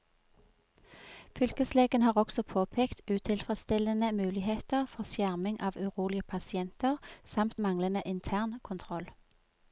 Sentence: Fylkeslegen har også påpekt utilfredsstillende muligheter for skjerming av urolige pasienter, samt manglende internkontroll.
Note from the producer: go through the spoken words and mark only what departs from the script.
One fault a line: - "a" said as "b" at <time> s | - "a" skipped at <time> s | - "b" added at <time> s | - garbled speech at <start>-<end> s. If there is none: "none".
none